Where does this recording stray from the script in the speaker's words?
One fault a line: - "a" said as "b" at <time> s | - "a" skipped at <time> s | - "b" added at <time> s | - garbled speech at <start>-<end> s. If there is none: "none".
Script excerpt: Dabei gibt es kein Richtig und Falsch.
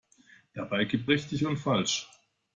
- "es kein" skipped at 1.1 s